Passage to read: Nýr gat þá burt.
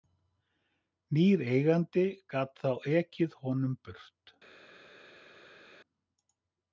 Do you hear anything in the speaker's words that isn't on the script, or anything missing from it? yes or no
yes